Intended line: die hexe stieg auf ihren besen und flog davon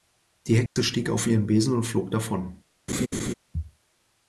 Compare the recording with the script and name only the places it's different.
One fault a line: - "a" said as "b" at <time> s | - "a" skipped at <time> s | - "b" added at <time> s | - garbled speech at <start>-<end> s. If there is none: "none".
none